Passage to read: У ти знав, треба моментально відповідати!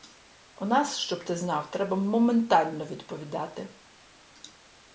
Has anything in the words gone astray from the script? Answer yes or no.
yes